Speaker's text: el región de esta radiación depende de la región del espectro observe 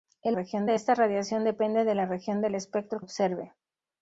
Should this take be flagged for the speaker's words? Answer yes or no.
no